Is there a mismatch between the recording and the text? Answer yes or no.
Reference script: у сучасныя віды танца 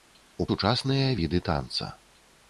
no